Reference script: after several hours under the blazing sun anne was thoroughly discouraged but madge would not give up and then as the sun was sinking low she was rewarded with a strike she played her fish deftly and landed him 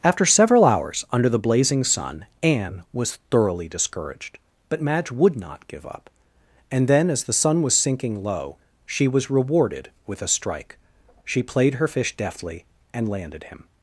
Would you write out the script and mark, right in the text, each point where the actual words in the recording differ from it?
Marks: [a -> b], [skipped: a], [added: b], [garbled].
after several hours under the blazing sun anne was thoroughly discouraged but madge would not give up and then as the sun was sinking low she was rewarded with a strike she played her fish deftly and landed him